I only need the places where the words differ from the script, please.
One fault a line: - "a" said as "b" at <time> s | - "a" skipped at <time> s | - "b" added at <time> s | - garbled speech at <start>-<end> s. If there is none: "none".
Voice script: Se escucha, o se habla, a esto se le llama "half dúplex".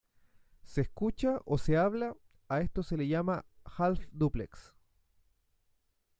none